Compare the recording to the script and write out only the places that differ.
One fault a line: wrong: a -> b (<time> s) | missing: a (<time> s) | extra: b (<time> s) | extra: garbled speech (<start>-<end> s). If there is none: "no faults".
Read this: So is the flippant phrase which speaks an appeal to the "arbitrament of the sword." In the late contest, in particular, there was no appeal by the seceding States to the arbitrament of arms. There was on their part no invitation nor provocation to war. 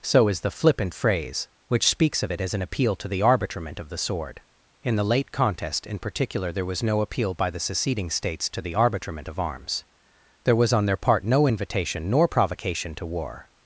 extra: of it as (2.2 s)